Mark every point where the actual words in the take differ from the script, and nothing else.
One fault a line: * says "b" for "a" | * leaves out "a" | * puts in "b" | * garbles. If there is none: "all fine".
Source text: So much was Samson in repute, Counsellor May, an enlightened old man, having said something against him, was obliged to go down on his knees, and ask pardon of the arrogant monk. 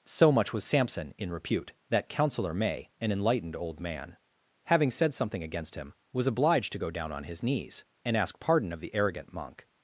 * puts in "that"